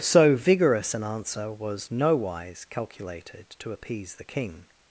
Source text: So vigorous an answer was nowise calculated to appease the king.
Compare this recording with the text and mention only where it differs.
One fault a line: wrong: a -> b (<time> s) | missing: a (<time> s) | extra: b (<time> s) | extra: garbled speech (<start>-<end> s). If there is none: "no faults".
no faults